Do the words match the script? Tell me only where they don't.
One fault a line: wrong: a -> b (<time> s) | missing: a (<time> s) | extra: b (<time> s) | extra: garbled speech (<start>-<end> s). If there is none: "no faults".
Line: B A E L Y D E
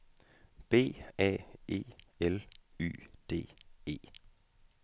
no faults